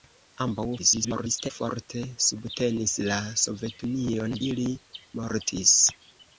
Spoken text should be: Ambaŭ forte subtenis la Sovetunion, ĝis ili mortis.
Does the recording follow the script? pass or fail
fail